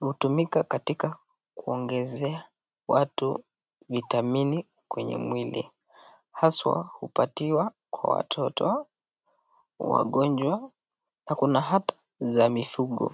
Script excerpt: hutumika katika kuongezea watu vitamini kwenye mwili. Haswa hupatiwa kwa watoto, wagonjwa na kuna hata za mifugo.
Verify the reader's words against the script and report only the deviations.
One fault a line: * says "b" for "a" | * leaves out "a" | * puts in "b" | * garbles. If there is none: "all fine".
all fine